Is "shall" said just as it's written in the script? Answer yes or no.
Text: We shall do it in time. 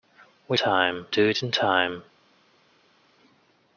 no